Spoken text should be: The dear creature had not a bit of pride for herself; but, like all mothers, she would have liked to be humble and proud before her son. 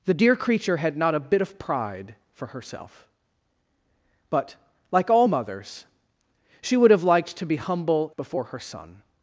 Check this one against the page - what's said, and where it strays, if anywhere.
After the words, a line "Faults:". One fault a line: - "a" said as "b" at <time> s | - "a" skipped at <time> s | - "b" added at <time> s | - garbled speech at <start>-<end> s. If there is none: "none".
The dear creature had not a bit of pride for herself; but, like all mothers, she would have liked to be humble before her son.
Faults:
- "and proud" skipped at 8.1 s